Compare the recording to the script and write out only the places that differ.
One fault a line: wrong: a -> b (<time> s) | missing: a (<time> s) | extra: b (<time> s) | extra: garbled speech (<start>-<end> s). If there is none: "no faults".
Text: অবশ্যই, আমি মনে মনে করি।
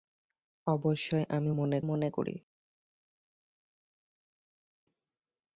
no faults